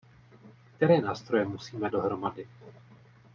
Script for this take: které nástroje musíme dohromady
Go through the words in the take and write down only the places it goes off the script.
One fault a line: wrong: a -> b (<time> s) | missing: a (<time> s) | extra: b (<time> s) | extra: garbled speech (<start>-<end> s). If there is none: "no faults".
no faults